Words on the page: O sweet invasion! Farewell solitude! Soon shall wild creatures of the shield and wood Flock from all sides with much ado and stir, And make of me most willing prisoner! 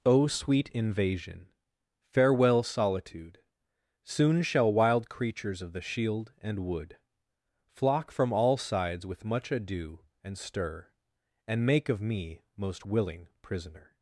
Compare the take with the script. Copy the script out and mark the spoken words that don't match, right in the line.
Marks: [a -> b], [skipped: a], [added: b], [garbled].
O sweet invasion! Farewell solitude! Soon shall wild creatures of the shield and wood Flock from all sides with much ado and stir, And make of me most willing prisoner!